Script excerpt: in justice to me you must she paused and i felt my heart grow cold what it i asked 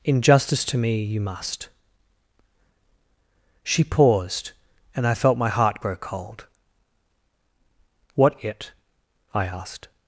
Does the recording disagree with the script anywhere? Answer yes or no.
no